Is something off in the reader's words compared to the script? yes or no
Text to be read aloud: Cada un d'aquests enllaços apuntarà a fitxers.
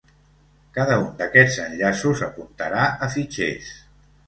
no